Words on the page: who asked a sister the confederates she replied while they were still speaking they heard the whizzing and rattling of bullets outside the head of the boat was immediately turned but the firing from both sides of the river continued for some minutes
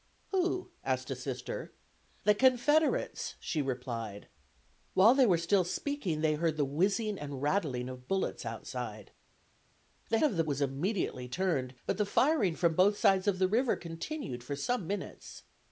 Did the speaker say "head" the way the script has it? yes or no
no